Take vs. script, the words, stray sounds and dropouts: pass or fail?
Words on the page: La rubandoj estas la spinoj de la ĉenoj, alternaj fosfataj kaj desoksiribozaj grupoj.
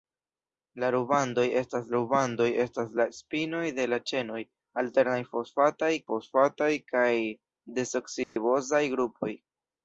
fail